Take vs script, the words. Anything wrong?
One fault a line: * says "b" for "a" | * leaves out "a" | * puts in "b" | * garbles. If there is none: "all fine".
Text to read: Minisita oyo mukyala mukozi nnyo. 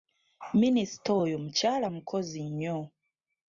all fine